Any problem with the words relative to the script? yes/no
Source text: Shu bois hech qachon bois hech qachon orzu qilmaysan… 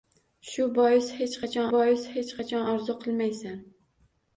no